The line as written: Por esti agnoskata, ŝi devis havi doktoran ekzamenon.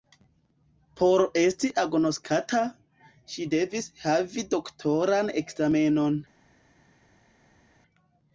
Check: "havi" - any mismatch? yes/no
no